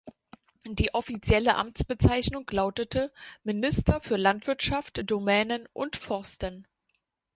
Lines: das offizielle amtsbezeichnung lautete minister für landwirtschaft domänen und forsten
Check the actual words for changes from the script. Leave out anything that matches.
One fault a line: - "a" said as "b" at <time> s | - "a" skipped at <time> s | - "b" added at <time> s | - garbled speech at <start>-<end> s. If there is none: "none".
- "das" said as "die" at 0.7 s